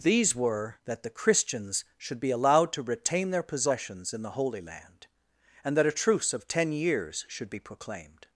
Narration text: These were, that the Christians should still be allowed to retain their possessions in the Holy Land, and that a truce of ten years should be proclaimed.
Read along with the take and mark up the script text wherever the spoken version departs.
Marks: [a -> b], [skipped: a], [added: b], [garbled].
These were, that the Christians should [skipped: still] be allowed to retain their possessions in the Holy Land, and that a truce of ten years should be proclaimed.